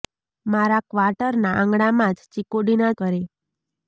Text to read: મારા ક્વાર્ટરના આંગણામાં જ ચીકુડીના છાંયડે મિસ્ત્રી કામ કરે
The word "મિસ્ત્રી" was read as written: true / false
false